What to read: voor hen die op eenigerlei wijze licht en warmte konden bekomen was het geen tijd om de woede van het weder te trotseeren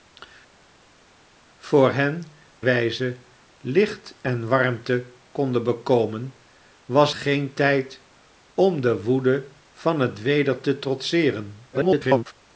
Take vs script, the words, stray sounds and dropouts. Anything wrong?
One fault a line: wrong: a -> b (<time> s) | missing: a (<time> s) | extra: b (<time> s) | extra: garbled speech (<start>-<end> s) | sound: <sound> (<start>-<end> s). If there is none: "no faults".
missing: die op eenigerlei (2.2 s)
missing: het (7.1 s)
extra: garbled speech (11.7-12.3 s)